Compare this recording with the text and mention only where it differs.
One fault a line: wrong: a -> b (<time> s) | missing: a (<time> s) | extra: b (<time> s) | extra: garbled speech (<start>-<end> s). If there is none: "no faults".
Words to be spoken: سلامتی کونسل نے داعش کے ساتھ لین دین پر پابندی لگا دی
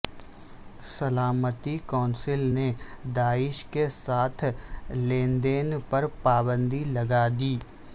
no faults